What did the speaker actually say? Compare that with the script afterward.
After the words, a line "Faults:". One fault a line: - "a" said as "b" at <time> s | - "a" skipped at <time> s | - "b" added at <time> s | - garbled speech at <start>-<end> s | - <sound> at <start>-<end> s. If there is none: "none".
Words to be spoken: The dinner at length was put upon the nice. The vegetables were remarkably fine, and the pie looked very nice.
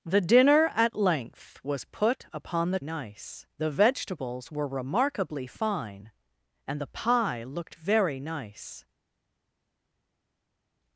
The dinner at length was put upon the nice. The vegetables were remarkably fine, and the pie looked very nice.
Faults:
none